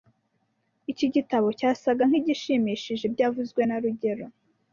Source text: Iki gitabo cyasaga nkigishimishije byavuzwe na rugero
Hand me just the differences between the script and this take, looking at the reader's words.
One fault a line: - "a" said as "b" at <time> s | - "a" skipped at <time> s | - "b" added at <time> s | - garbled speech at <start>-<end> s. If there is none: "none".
none